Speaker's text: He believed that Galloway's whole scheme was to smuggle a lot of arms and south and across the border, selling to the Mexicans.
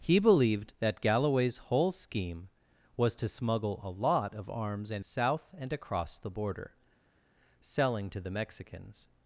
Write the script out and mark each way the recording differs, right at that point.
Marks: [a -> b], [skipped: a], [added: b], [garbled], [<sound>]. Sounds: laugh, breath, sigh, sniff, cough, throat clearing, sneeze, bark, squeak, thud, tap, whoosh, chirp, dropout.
He believed that Galloway's whole scheme was to smuggle a lot of arms and south and across the border, selling to the Mexicans.